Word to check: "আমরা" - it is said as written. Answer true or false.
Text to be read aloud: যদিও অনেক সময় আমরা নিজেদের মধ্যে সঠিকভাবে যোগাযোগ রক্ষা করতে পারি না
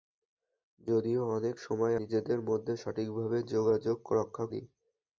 false